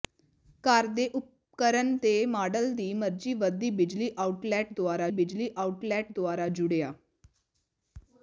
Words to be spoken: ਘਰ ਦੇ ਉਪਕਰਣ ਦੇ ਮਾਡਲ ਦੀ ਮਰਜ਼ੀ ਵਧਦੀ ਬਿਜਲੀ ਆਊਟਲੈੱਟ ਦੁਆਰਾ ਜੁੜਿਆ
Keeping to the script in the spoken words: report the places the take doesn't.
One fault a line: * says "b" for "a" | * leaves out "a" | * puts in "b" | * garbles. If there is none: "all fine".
* puts in "ਬਿਜਲੀ ਆਊਟਲੈੱਟ ਦੁਆਰਾ"